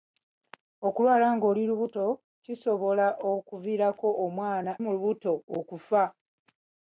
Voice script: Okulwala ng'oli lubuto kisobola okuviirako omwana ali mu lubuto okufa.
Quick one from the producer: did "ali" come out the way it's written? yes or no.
no